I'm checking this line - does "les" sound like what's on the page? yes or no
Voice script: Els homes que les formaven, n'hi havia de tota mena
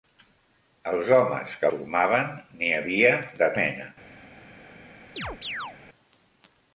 no